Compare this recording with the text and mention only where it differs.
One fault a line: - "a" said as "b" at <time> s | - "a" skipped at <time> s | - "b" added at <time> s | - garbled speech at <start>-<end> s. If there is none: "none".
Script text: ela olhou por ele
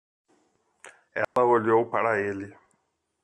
- "por" said as "para" at 1.9 s